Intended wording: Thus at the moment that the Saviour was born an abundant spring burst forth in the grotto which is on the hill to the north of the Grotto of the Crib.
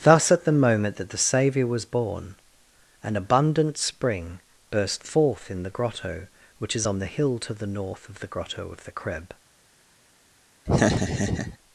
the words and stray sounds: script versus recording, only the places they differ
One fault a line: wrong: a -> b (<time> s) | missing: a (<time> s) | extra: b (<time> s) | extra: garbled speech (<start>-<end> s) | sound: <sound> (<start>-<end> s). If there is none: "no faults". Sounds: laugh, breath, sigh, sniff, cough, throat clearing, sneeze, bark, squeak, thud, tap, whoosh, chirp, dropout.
sound: laugh (10.7-11.6 s)